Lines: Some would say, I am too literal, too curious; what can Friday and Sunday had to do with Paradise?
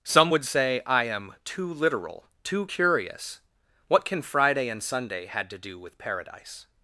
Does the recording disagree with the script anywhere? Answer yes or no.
no